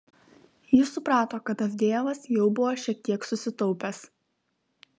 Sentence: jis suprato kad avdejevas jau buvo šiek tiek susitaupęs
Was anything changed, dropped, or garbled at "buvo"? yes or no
no